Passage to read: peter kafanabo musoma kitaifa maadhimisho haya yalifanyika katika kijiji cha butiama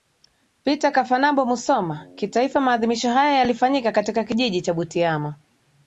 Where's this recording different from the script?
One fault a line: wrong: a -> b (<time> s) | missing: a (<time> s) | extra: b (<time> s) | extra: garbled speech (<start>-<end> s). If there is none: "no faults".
no faults